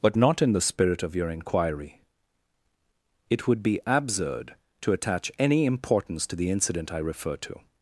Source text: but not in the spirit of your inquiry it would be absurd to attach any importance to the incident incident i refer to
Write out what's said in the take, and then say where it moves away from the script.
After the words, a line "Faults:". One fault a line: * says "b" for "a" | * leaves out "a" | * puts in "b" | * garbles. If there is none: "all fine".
but not in the spirit of your inquiry it would be absurd to attach any importance to the incident i refer to
Faults:
* leaves out "incident"